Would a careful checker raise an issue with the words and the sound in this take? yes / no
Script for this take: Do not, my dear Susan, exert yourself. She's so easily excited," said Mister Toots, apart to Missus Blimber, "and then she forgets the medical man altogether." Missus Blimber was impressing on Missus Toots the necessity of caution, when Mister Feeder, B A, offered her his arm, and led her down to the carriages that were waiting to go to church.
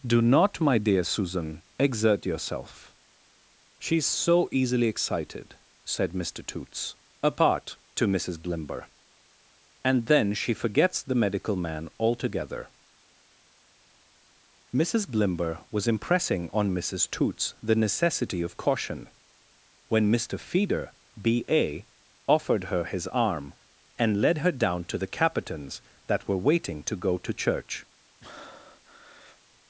yes